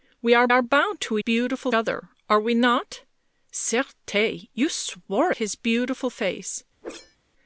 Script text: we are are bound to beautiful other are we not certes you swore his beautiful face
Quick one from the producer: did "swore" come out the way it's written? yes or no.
yes